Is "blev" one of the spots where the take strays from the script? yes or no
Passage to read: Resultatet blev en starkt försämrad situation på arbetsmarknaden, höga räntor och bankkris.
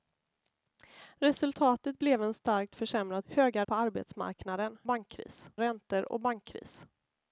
no